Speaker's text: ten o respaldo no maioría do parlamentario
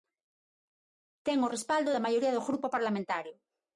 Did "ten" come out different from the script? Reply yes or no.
no